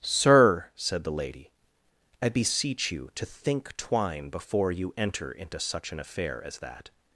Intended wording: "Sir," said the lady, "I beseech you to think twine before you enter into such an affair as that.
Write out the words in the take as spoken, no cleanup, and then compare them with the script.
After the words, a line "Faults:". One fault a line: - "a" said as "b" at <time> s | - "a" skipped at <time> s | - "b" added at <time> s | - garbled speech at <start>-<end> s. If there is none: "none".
"Sir," said the lady, "I beseech you to think twine before you enter into such an affair as that.
Faults:
none